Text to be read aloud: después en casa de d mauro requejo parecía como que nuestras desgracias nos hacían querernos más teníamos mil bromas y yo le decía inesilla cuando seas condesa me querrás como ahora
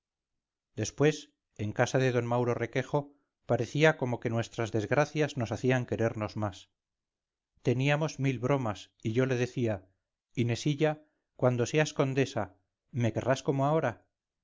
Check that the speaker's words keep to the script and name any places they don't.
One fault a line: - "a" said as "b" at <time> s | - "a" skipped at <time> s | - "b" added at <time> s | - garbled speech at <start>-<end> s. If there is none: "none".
none